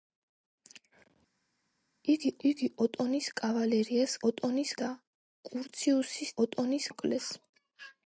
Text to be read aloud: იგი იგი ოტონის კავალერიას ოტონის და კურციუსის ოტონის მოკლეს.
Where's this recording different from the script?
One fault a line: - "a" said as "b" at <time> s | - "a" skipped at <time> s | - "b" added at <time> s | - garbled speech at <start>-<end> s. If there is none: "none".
none